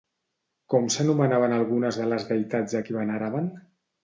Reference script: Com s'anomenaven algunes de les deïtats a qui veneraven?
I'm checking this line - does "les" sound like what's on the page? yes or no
yes